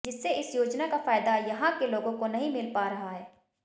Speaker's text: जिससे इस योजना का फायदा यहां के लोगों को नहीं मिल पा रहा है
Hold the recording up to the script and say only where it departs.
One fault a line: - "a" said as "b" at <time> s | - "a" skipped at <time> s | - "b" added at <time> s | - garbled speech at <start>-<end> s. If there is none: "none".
none